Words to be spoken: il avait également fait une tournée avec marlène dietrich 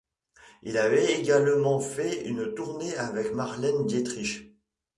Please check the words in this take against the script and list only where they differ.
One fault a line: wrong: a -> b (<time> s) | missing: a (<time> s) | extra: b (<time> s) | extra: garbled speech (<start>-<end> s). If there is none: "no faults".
no faults